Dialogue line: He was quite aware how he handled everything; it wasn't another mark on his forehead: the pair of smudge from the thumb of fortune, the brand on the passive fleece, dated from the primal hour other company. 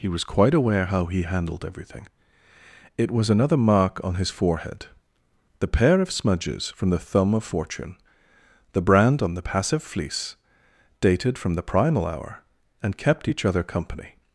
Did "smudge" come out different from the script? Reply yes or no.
yes